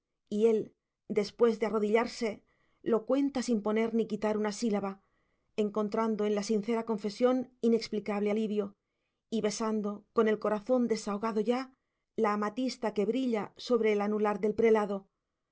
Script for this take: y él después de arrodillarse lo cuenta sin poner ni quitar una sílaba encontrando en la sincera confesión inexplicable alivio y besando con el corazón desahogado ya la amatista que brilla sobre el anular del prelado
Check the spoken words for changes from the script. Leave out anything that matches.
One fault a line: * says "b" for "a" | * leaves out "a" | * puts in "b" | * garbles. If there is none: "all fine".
all fine